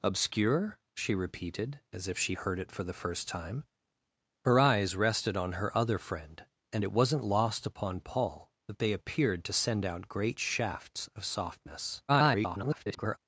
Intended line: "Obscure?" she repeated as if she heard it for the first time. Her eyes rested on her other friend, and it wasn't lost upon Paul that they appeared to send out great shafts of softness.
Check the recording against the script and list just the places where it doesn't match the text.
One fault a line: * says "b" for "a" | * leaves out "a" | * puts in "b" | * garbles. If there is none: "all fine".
* garbles